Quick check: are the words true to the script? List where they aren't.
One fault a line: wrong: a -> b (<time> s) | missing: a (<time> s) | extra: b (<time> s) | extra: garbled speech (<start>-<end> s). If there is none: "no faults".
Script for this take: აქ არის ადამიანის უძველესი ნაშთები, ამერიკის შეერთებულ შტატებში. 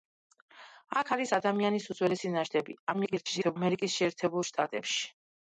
extra: garbled speech (2.9-3.6 s)